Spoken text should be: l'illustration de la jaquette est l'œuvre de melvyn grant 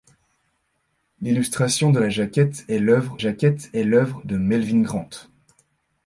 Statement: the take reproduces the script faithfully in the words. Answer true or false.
false